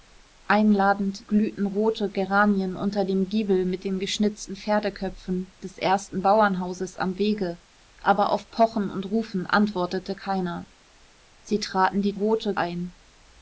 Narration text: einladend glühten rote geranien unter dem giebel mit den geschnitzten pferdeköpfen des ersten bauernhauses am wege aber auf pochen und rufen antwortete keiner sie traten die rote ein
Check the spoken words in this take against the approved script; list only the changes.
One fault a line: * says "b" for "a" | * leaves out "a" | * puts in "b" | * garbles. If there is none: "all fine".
all fine